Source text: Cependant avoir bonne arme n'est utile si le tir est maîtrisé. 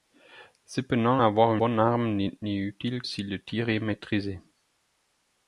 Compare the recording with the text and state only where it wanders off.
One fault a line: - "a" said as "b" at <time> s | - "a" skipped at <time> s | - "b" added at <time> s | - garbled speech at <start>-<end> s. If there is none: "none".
none